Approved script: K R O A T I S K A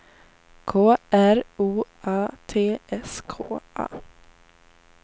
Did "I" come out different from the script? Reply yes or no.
yes